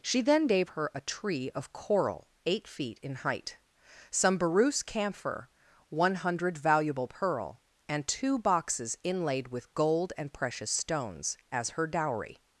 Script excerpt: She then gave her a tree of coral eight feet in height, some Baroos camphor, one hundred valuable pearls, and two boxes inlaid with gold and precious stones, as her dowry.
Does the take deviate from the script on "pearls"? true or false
true